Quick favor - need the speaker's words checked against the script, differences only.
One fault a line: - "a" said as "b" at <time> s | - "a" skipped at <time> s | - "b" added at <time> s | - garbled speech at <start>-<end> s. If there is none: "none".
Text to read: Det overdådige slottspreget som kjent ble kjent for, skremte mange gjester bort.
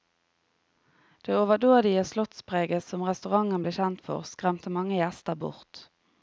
- "kjent" said as "restauranten" at 3.1 s